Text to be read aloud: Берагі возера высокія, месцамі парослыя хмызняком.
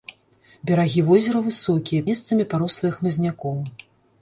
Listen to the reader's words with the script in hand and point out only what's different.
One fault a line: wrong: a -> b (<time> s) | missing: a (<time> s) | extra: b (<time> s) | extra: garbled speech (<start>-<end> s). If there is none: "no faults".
no faults